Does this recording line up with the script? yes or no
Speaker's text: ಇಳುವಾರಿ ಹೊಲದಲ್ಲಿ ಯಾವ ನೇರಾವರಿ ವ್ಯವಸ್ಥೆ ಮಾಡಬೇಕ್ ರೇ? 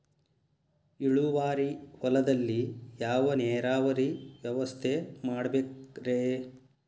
yes